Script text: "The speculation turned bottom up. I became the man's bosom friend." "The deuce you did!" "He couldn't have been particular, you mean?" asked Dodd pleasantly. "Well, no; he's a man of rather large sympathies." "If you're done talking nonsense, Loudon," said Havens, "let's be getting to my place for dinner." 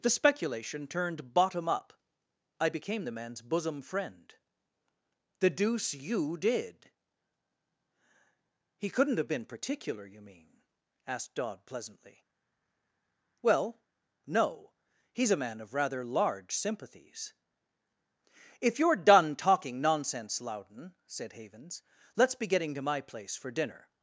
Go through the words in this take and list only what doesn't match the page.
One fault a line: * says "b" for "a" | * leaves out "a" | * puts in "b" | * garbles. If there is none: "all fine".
all fine